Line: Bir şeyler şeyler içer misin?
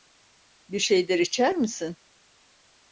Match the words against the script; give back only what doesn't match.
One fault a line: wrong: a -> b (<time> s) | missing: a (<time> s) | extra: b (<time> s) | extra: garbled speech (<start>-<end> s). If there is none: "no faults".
missing: şeyler (1.2 s)